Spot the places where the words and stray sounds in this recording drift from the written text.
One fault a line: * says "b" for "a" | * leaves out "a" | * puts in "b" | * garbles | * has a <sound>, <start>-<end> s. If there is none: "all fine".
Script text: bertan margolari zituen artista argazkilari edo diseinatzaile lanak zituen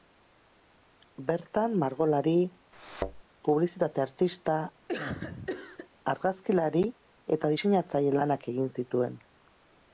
* has a thud, 2.7-3.2 s
* says "publizitate" for "zituen"
* has a cough, 4.9-5.9 s
* says "eta" for "edo"
* puts in "egin"